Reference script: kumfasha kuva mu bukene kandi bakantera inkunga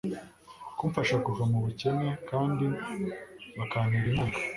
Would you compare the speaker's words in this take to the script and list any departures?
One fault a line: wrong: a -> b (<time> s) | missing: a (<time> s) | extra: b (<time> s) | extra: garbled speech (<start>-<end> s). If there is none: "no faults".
no faults